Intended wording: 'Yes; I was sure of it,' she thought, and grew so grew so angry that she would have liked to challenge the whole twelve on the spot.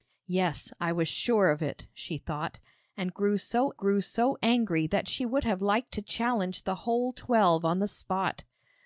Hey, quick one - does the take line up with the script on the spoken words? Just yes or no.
yes